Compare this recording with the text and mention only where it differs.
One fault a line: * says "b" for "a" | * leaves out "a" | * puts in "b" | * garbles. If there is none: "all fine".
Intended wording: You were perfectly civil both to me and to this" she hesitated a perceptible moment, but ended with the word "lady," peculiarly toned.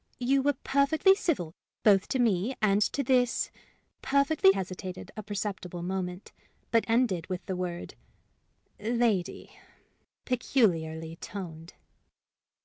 * says "perfectly" for "she"